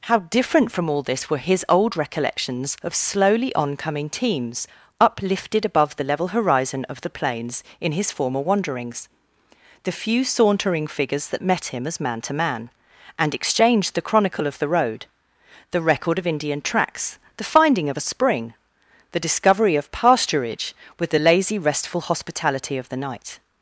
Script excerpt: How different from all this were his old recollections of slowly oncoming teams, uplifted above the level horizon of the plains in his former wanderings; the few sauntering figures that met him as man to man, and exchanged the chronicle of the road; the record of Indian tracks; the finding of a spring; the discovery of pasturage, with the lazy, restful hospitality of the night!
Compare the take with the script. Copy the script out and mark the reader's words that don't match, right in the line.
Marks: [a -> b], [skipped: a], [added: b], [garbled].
How different from all this were his old recollections of slowly oncoming teams, uplifted above the level horizon of the plains in his former wanderings; the few sauntering figures that met him as man to man, and exchanged the chronicle of the road; the record of Indian tracks; the finding of a spring; the discovery of pasturage, with the lazy, restful hospitality of the night!